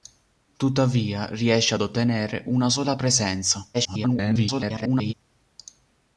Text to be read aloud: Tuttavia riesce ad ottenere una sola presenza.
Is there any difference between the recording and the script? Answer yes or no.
yes